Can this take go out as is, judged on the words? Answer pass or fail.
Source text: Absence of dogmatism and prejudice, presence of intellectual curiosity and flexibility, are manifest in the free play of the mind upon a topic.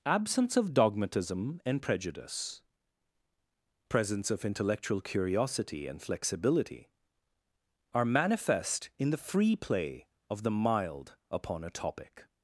fail